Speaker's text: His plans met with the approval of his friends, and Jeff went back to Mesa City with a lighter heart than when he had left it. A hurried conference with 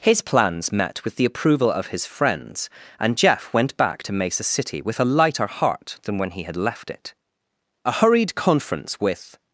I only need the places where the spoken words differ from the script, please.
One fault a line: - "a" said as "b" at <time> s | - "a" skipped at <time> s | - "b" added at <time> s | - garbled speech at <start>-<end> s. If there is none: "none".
none